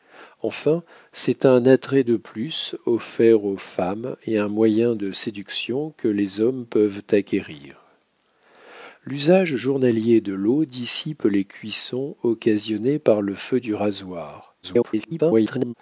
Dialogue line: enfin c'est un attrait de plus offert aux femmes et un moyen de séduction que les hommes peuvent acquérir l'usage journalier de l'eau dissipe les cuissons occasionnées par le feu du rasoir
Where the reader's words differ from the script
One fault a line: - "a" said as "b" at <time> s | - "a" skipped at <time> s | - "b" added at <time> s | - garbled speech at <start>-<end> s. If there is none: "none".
- garbled speech at 14.6-15.7 s